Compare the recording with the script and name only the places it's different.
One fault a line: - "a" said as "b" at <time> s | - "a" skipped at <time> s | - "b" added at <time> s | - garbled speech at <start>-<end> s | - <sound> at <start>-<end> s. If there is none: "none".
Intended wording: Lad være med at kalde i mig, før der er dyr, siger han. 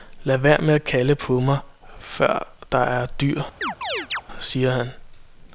- "i" said as "på" at 1.1 s
- chirp at 3.6-4.2 s